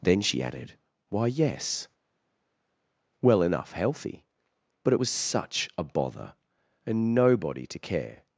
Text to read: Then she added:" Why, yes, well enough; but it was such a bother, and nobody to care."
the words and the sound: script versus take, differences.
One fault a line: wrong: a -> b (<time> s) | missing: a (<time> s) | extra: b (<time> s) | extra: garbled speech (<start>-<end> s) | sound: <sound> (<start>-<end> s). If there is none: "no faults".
extra: healthy (3.7 s)